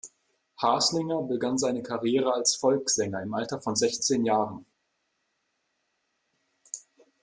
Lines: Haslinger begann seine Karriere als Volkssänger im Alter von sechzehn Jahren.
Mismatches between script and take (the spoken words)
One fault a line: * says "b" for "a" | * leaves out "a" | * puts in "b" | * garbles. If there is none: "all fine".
all fine